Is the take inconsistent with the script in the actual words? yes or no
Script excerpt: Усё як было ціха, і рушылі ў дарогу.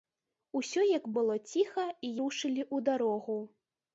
no